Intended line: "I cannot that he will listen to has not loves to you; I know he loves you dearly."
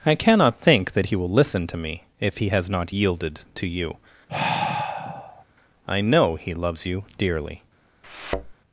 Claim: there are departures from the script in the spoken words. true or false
true